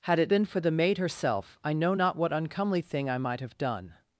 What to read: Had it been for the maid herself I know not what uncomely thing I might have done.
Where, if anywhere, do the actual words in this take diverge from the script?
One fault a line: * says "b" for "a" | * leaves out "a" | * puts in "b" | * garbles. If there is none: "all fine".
all fine